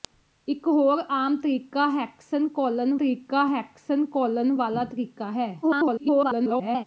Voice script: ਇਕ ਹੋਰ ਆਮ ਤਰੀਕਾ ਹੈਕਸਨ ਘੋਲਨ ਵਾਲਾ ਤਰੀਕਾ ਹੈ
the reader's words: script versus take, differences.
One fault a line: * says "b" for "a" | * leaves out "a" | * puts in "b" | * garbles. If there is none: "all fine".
* puts in "ਤਰੀਕਾ ਹੈਕਸਨ ਘੋਲਨ"
* garbles